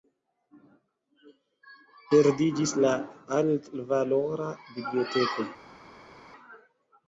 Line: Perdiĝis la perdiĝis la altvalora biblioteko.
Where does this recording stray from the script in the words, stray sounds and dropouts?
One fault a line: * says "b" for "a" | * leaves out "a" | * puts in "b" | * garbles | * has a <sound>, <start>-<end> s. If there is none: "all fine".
* leaves out "perdiĝis la"